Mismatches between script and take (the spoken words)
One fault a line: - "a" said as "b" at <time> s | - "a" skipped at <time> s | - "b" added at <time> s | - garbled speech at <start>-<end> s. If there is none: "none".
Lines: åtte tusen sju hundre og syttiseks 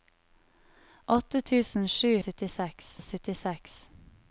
- "hundre" said as "syttiseks" at 2.2 s